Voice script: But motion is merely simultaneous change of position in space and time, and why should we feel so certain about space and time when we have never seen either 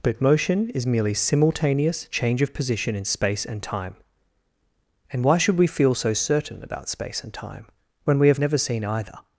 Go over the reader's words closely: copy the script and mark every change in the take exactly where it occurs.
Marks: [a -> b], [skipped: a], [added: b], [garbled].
But motion is merely simultaneous change of position in space and time, and why should we feel so certain about space and time when we have never seen either